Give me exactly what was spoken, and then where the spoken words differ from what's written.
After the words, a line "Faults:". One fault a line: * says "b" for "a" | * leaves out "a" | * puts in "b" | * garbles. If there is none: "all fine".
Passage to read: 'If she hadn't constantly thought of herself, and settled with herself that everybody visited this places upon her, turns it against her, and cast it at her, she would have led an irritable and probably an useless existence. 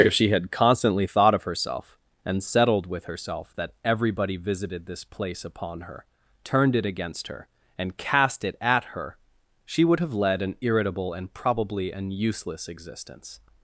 'If she had constantly thought of herself, and settled with herself that everybody visited this place upon her, turned it against her, and cast it at her, she would have led an irritable and probably an useless existence.
Faults:
* says "had" for "hadn't"
* says "place" for "places"
* says "turned" for "turns"